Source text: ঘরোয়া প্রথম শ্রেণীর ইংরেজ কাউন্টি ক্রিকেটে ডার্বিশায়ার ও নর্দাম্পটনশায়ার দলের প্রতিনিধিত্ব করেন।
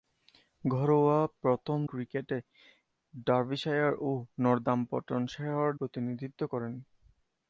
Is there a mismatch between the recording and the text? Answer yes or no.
yes